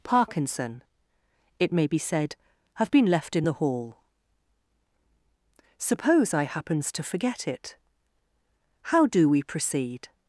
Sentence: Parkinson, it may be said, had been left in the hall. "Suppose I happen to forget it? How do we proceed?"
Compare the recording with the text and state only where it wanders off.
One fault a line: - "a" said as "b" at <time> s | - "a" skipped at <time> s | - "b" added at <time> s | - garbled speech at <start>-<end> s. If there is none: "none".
- "had" said as "have" at 2.8 s
- "happen" said as "happens" at 6.4 s